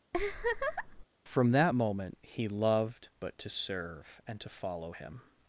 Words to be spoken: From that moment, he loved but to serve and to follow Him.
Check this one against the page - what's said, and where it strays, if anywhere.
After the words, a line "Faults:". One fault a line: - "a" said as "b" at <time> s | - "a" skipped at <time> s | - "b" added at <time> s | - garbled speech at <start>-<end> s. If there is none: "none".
From that moment, he loved but to serve and to follow Him.
Faults:
none